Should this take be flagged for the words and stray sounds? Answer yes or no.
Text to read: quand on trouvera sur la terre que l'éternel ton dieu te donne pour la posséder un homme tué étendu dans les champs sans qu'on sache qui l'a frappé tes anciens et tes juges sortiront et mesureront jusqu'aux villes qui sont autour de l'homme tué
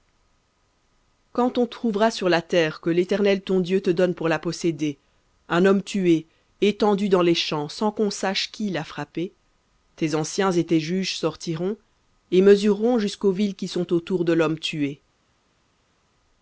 no